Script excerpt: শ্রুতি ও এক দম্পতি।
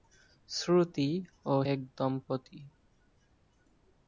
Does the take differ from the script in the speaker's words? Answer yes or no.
no